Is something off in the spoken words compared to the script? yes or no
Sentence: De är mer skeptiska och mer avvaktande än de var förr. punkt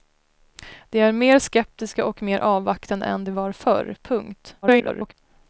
yes